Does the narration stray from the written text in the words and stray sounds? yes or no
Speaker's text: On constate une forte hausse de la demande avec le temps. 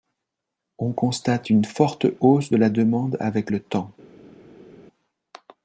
no